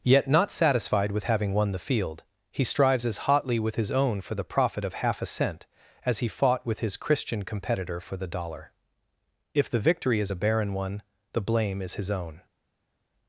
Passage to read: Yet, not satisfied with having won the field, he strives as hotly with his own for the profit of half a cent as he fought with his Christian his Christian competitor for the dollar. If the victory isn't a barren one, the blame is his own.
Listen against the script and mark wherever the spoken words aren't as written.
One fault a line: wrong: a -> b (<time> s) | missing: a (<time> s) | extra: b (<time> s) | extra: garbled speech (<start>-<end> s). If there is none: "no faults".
missing: his Christian (7.4 s)
wrong: isn't -> is (10.2 s)